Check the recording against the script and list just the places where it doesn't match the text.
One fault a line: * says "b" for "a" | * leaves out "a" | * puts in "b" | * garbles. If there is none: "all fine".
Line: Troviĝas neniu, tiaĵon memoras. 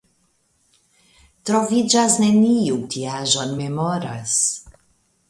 all fine